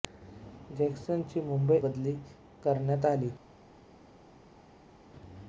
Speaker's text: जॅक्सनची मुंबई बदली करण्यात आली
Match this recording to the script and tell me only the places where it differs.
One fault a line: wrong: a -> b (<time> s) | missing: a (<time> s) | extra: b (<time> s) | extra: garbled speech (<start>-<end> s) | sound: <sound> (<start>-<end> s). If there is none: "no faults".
no faults